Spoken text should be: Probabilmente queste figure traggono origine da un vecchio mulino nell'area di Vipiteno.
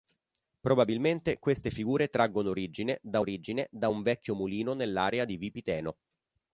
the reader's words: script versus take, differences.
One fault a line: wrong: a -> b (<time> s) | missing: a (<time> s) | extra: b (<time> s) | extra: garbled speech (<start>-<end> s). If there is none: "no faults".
extra: origine da (3.2 s)